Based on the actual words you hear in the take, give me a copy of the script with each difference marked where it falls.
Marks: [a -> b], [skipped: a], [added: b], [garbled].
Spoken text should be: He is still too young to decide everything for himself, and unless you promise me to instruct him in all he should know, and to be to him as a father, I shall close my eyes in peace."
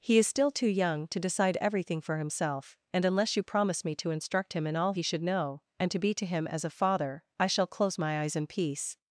He is still too young to decide everything for himself, and unless you promise me to instruct him in all he should know, and to be to him as a father, I shall close my eyes in peace."